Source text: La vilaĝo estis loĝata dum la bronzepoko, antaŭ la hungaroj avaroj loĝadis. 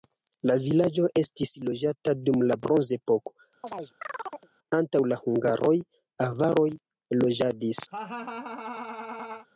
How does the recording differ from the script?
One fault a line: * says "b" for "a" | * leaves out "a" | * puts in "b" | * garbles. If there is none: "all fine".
all fine